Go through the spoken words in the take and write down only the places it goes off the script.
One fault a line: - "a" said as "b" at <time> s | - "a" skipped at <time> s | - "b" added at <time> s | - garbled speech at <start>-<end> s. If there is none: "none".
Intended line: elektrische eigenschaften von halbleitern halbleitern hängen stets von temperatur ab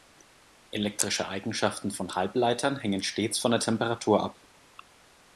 - "halbleitern" skipped at 2.8 s
- "der" added at 3.5 s